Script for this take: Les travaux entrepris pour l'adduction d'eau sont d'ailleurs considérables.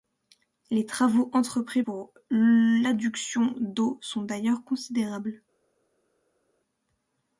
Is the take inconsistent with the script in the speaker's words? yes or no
no